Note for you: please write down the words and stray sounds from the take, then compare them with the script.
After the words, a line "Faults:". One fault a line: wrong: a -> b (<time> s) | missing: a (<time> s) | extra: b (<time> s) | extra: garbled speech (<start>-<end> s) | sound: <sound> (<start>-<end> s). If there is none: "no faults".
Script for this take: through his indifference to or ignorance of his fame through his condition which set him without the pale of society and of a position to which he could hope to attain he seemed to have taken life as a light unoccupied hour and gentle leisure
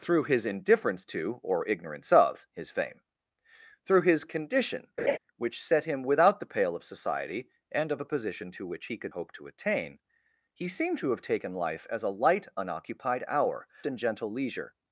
through his indifference to or ignorance of his fame through his condition which set him without the pale of society and of a position to which he could hope to attain he seemed to have taken life as a light unoccupied hour and gentle leisure
Faults:
sound: laugh (5.0-5.2 s)